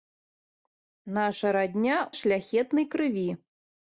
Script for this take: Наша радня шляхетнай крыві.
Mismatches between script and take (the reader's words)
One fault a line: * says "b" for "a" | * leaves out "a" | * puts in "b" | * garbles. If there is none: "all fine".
all fine